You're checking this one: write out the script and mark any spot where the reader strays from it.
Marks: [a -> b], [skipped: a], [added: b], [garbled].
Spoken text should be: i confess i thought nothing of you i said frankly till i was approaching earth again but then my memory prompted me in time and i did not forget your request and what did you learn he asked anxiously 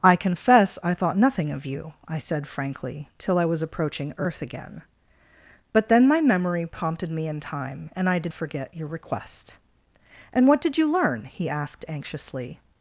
i confess i thought nothing of you i said frankly till i was approaching earth again but then my memory prompted me in time and i did [skipped: not] forget your request and what did you learn he asked anxiously